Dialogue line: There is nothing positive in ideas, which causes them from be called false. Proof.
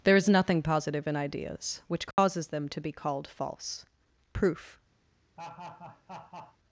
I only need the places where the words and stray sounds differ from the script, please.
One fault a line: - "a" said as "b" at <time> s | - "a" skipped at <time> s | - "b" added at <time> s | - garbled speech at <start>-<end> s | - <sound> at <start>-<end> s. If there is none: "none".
- dropout at 2.1-2.2 s
- "from" said as "to" at 2.7 s
- laugh at 5.4-6.6 s